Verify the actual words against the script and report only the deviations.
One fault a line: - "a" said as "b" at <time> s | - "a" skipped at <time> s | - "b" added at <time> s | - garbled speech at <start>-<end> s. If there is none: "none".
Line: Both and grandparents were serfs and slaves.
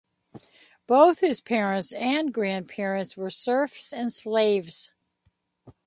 - "his parents" added at 1.2 s